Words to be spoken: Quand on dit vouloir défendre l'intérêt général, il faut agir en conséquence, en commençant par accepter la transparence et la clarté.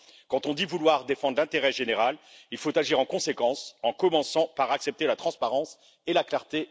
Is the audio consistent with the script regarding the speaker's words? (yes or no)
yes